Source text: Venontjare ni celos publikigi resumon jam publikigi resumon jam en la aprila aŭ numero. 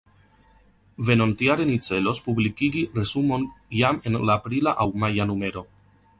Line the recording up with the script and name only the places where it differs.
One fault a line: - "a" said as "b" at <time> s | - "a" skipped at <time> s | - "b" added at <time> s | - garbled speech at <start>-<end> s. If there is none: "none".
- "publikigi resumon jam" skipped at 4.0 s
- "maja" added at 5.1 s